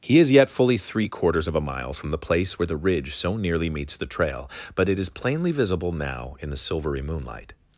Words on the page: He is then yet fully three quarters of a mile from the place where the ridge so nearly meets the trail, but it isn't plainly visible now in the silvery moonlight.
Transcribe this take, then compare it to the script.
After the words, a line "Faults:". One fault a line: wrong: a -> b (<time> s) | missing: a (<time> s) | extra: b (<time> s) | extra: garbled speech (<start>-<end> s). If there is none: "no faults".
He is yet fully three quarters of a mile from the place where the ridge so nearly meets the trail, but it is plainly visible now in the silvery moonlight.
Faults:
missing: then (0.3 s)
wrong: isn't -> is (5.0 s)